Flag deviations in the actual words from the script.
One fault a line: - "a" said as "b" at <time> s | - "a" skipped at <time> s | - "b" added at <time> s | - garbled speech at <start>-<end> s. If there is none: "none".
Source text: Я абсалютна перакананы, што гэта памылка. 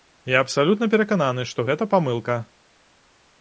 none